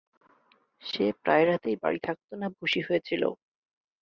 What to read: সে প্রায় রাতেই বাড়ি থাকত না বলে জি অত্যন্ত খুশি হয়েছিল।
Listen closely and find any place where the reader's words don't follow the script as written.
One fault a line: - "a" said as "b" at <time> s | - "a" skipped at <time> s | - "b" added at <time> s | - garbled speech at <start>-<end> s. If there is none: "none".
- "বলে জি অত্যন্ত" skipped at 2.5 s